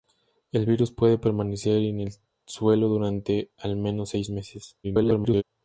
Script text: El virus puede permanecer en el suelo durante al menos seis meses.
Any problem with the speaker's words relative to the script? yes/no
yes